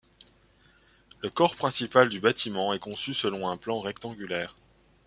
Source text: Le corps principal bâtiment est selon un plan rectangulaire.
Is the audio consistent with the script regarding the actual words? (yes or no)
no